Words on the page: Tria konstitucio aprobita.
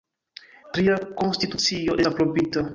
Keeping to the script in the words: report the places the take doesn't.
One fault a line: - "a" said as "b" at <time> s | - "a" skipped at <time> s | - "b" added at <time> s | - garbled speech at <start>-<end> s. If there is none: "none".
none